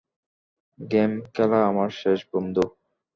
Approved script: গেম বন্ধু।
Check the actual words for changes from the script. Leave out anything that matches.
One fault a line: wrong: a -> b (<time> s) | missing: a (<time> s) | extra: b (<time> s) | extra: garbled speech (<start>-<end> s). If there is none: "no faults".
extra: খেলা আমার শেষ (1.3 s)